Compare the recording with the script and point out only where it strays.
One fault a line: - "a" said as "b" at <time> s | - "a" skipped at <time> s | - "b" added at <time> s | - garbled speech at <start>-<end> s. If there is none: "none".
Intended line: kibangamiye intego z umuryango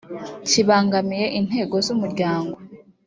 none